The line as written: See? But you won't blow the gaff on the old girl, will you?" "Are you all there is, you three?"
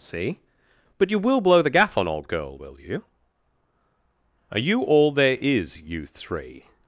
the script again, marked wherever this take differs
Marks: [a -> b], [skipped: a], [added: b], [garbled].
See? But you [won't -> will] blow the gaff on [skipped: the] old girl, will you?" "Are you all there is, you three?"